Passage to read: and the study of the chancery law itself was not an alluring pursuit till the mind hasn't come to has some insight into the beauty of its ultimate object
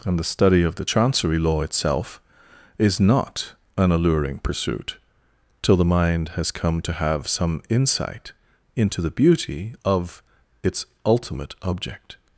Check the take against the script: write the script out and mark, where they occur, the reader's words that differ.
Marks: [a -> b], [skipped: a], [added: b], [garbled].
and the study of the chancery law itself [was -> is] not an alluring pursuit till the mind [hasn't -> has] come to [has -> have] some insight into the beauty of its ultimate object